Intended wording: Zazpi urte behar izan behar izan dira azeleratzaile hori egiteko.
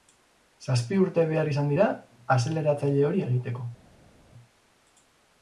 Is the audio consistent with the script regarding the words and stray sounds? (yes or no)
no